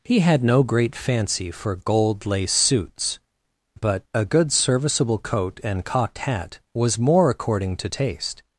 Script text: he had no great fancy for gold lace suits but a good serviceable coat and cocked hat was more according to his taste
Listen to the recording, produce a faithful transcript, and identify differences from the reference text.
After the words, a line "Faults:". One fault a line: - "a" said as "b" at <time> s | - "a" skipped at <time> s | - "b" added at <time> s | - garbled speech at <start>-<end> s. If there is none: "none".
he had no great fancy for gold lace suits but a good serviceable coat and cocked hat was more according to taste
Faults:
- "his" skipped at 7.9 s